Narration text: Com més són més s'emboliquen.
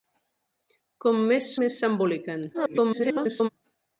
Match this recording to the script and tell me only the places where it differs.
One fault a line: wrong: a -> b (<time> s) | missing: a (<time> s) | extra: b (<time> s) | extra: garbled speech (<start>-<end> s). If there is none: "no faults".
missing: són (1.5 s)
extra: garbled speech (2.5-3.5 s)